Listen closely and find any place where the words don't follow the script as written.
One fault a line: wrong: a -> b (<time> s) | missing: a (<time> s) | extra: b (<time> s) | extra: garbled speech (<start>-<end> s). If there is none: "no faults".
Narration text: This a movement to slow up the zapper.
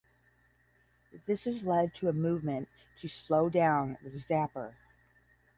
extra: has led to (1.4 s)
wrong: up -> down (3.5 s)